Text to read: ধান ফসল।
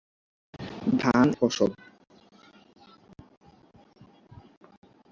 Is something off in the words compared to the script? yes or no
no